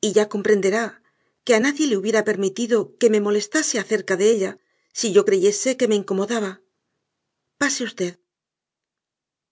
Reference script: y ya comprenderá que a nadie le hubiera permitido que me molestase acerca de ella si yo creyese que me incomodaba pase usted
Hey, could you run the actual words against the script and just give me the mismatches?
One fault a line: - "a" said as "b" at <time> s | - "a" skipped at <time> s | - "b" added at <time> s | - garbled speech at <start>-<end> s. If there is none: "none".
none